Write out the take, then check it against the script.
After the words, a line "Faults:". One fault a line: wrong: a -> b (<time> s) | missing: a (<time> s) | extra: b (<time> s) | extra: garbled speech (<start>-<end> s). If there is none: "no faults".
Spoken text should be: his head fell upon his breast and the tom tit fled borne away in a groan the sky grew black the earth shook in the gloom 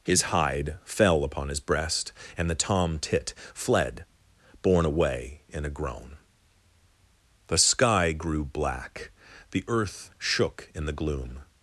his hide fell upon his breast and the tom tit fled borne away in a groan the sky grew black the earth shook in the gloom
Faults:
wrong: head -> hide (0.2 s)